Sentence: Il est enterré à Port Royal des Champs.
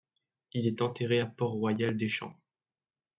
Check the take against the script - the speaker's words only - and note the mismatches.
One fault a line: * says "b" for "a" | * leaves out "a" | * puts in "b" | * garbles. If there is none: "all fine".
all fine